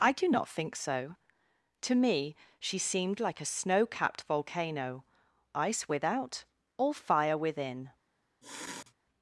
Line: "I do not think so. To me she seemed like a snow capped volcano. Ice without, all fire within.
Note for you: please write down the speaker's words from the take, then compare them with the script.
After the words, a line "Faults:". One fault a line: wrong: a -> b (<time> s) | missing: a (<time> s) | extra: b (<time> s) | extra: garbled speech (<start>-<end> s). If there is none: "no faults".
"I do not think so. To me she seemed like a snow capped volcano. Ice without, all fire within.
Faults:
no faults